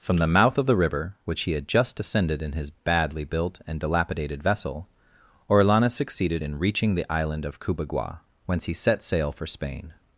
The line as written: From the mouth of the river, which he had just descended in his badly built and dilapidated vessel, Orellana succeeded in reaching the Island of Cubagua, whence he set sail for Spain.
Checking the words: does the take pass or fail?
pass